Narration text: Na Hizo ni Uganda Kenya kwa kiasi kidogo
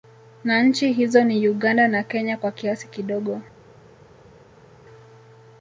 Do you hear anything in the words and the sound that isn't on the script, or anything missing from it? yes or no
yes